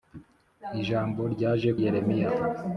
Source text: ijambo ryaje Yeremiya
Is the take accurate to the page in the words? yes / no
yes